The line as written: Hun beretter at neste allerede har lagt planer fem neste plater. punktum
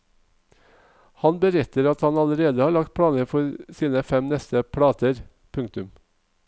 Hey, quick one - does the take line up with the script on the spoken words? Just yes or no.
no